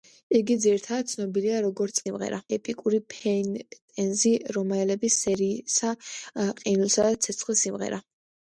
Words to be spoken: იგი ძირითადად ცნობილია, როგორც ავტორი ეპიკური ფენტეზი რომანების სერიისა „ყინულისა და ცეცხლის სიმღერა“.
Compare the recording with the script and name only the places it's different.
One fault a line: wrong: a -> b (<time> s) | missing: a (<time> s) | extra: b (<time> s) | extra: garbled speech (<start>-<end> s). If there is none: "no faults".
wrong: ავტორი -> სიმღერა (2.1 s)